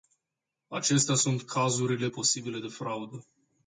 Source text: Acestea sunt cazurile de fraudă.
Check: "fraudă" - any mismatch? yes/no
no